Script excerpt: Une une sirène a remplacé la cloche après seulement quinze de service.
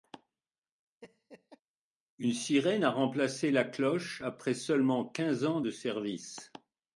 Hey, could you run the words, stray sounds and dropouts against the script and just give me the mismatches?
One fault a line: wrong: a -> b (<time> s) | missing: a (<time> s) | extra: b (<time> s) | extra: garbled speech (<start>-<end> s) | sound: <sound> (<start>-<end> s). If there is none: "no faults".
sound: laugh (1.0-1.6 s)
missing: une (2.3 s)
extra: ans (5.4 s)